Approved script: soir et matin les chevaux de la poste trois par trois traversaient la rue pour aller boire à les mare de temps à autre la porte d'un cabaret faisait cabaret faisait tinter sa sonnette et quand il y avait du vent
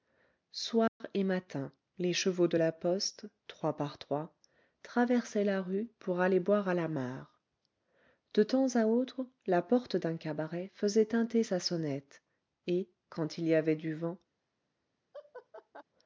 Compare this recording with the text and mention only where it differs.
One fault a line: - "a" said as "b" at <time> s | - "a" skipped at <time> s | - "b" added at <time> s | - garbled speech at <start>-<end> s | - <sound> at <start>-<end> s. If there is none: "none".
- dropout at 0.9-1.0 s
- "les" said as "la" at 6.7 s
- "cabaret faisait" skipped at 11.0 s
- laugh at 15.1-15.8 s